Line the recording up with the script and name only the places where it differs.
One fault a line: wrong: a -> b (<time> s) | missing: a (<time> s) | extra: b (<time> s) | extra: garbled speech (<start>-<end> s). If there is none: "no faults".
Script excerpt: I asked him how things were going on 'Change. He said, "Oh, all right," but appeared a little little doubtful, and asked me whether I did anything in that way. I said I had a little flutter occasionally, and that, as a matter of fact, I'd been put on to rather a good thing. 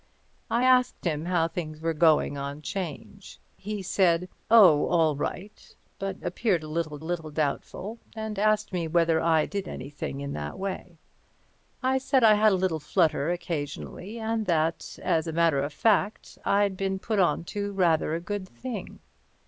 no faults